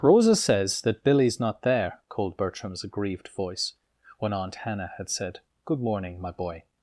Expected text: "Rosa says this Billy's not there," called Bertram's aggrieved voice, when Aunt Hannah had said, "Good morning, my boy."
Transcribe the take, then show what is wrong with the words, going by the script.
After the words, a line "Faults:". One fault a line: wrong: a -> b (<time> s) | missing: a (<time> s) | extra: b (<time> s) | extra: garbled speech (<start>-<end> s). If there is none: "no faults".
"Rosa says that Billy's not there," called Bertram's aggrieved voice, when Aunt Hannah had said, "Good morning, my boy."
Faults:
wrong: this -> that (0.8 s)